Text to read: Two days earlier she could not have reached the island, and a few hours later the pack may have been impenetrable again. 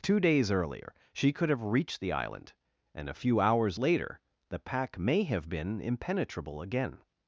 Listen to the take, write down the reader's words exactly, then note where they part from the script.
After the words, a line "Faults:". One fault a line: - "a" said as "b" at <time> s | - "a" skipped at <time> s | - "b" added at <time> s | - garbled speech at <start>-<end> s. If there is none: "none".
Two days earlier she could have reached the island, and a few hours later the pack may have been impenetrable again.
Faults:
- "not" skipped at 1.5 s